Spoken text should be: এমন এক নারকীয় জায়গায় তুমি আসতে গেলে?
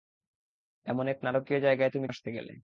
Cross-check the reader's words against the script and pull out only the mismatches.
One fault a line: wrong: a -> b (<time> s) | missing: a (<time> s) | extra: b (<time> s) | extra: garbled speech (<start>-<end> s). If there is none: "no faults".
no faults